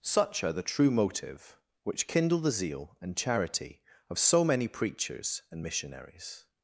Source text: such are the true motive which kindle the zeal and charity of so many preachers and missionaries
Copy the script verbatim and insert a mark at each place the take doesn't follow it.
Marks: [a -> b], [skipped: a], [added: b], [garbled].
such are the true motive which kindle the zeal and charity of so many preachers and missionaries